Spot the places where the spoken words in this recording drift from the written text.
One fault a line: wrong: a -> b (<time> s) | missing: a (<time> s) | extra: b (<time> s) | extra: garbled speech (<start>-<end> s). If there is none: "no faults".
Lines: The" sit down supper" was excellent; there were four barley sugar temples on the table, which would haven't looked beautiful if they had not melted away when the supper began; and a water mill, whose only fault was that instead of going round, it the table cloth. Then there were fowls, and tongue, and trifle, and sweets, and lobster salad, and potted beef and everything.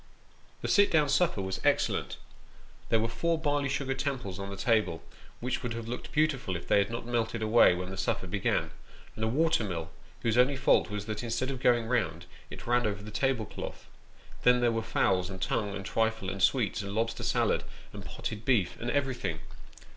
wrong: haven't -> have (5.7 s)
extra: ran over (12.7 s)